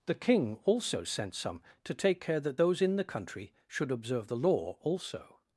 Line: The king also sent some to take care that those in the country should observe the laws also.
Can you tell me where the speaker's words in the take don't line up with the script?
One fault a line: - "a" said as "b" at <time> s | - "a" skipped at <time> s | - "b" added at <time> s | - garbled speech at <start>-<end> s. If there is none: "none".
- "laws" said as "law" at 4.4 s